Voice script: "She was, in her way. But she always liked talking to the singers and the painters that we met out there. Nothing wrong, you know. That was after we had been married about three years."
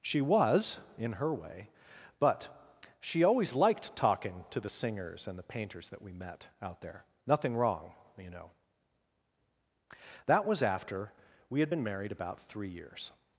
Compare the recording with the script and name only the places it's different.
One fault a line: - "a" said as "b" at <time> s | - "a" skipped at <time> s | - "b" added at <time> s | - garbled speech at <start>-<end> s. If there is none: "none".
none